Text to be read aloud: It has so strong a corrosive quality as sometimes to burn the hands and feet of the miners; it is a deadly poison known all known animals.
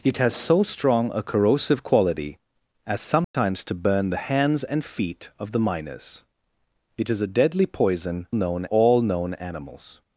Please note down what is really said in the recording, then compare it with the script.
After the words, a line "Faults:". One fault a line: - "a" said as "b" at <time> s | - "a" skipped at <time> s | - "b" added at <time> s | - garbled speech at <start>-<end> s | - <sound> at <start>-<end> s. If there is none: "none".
It has so strong a corrosive quality as sometimes to burn the hands and feet of the miners; it is a deadly poison known all known animals.
Faults:
- dropout at 3.2-3.3 s